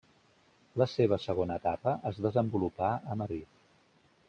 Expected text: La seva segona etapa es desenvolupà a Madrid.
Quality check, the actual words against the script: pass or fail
pass